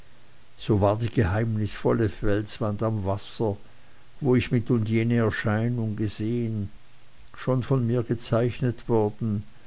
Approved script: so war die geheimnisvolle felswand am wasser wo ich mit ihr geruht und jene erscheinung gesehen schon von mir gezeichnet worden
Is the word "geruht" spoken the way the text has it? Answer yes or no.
no